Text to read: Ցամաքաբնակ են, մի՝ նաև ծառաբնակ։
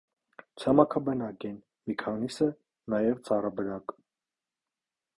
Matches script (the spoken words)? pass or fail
fail